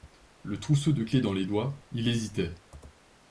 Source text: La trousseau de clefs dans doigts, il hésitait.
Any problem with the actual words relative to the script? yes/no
yes